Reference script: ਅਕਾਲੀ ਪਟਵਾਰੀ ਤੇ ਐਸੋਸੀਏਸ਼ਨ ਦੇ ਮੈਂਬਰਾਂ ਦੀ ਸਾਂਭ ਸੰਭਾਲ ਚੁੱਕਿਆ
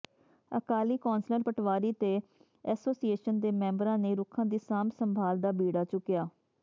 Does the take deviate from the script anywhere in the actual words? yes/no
yes